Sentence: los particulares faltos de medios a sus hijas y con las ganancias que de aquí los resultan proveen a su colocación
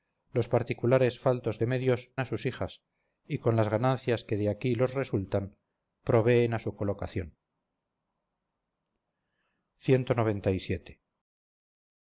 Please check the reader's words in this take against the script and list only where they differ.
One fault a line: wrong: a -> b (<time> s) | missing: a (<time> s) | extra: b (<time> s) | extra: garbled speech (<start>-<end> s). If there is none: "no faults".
no faults